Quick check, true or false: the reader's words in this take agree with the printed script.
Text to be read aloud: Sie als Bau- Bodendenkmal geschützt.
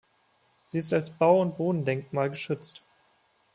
false